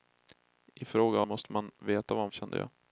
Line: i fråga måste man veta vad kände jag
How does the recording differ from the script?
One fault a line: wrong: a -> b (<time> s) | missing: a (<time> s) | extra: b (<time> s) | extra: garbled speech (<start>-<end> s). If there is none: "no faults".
no faults